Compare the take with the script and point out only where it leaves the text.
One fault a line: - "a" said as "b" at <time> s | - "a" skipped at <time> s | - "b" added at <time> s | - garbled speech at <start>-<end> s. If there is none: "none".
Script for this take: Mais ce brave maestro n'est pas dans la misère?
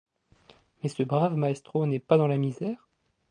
none